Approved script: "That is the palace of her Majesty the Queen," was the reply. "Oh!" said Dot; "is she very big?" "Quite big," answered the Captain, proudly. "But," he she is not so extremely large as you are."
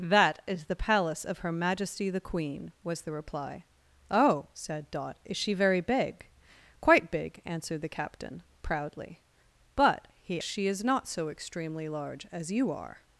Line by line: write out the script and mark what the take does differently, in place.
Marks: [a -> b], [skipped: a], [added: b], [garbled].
"That is the palace of her Majesty the Queen," was the reply. "Oh!" said Dot; "is she very big?" "Quite big," answered the Captain, proudly. "But," he she is not so extremely large as you are."